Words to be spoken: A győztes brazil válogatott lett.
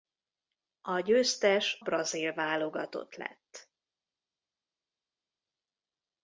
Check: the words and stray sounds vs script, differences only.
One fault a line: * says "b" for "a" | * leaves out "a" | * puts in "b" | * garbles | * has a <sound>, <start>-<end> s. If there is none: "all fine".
all fine